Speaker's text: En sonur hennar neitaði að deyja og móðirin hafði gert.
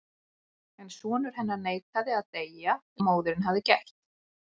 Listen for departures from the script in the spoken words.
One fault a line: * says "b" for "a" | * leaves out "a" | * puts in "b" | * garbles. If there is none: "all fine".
all fine